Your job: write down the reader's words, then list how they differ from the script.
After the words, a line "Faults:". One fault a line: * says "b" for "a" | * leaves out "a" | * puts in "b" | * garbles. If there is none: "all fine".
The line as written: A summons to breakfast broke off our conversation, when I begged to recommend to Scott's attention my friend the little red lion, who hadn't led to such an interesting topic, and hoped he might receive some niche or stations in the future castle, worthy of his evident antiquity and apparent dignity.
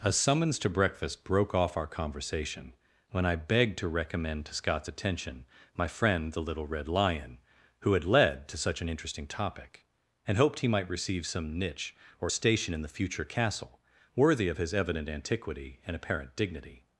A summons to breakfast broke off our conversation, when I begged to recommend to Scott's attention my friend the little red lion, who had led to such an interesting topic, and hoped he might receive some niche or station in the future castle, worthy of his evident antiquity and apparent dignity.
Faults:
* says "had" for "hadn't"
* says "station" for "stations"